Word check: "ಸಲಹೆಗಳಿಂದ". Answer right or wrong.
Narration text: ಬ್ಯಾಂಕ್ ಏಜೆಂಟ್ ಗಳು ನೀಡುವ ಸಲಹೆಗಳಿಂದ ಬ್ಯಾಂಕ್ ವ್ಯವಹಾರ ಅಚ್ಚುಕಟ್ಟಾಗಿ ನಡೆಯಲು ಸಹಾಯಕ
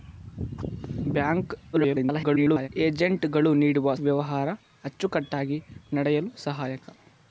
wrong